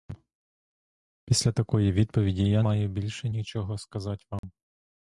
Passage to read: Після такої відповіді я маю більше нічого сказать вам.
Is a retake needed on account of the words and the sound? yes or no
yes